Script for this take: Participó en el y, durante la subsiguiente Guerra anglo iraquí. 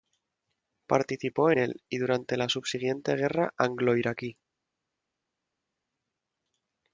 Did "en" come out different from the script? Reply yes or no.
yes